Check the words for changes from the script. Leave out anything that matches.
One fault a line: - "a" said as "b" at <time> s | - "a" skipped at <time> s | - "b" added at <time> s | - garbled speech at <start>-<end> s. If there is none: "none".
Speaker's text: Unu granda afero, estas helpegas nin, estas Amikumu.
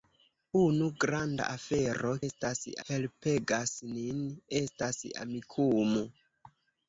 none